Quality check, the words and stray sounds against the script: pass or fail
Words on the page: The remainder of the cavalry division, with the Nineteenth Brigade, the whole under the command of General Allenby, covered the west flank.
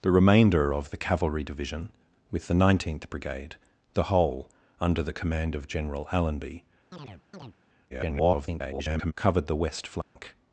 fail